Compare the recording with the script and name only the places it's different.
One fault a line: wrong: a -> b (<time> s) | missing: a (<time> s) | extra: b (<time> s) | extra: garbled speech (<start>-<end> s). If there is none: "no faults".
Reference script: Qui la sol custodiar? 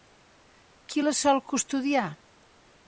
no faults